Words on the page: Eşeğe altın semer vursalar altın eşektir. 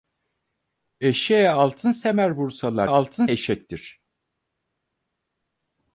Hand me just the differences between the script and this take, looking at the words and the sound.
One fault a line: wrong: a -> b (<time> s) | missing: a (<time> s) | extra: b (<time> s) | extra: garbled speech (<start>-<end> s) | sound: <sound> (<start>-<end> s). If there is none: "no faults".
no faults